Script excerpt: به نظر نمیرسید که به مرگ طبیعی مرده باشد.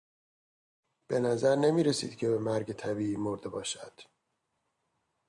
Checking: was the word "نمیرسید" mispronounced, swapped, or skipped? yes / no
no